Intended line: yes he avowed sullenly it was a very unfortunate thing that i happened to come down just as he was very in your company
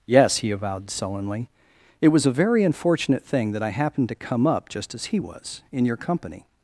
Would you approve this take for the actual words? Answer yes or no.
no